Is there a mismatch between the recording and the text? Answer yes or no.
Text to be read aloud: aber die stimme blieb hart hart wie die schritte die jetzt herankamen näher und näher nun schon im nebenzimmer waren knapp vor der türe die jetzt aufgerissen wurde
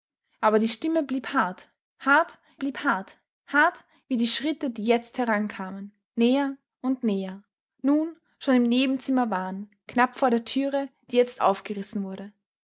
yes